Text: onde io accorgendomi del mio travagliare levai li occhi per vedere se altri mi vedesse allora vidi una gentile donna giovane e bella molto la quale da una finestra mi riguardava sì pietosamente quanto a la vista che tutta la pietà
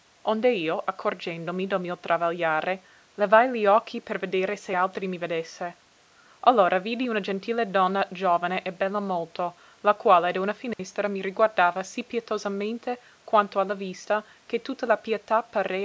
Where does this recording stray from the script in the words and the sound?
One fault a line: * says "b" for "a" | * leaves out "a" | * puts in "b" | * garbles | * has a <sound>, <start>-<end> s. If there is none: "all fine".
* has a dropout, 10.7-10.8 s